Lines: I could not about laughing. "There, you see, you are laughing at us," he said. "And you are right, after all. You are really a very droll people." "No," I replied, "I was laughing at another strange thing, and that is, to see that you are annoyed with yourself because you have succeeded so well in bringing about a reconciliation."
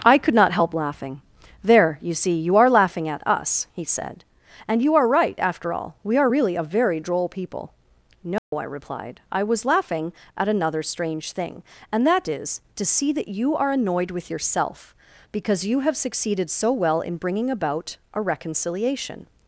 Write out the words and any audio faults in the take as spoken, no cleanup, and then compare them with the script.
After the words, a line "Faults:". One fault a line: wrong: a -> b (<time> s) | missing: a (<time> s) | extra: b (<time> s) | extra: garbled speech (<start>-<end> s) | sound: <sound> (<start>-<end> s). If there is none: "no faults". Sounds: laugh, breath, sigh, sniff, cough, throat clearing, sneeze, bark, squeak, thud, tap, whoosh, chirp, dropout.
I could not help laughing. "There, you see, you are laughing at us," he said. "And you are right, after all. We are really a very droll people." "No," I replied, "I was laughing at another strange thing, and that is, to see that you are annoyed with yourself because you have succeeded so well in bringing about a reconciliation."
Faults:
wrong: about -> help (0.5 s)
wrong: You -> We (6.0 s)
sound: dropout (8.4-8.5 s)